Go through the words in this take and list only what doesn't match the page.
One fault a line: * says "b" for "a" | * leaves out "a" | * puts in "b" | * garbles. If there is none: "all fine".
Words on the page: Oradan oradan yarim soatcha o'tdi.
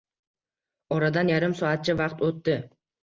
* leaves out "oradan"
* puts in "vaqt"